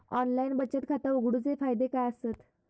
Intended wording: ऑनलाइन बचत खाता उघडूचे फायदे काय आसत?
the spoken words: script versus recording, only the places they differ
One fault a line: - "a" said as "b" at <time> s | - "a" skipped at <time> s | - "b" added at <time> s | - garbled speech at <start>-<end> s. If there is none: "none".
none